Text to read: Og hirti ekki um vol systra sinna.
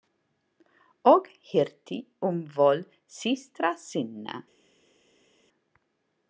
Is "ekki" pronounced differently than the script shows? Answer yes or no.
yes